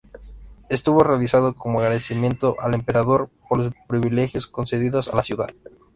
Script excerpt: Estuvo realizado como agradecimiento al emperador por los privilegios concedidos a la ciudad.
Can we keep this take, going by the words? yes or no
yes